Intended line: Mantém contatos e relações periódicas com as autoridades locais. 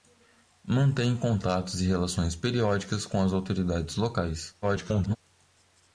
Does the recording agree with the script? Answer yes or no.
no